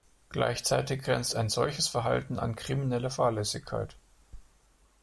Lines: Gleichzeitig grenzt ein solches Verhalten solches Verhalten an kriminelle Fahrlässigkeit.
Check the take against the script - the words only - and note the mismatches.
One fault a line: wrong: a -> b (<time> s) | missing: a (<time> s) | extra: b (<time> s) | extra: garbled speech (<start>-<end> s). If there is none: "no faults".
missing: solches Verhalten (2.4 s)